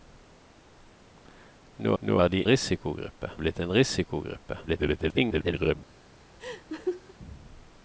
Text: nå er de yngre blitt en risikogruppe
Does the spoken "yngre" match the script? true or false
false